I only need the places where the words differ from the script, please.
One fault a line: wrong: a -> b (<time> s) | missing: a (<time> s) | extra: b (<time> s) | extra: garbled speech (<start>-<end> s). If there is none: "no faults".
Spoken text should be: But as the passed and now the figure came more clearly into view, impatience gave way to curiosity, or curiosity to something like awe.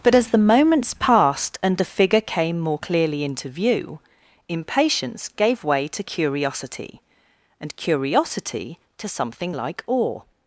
extra: moments (0.4 s)
missing: now (1.8 s)
wrong: or -> and (7.6 s)